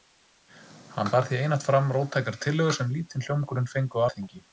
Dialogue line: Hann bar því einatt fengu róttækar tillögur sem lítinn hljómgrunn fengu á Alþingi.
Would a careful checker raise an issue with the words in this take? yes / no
yes